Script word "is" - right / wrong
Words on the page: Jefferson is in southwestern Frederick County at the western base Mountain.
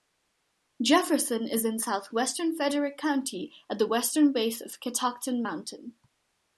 right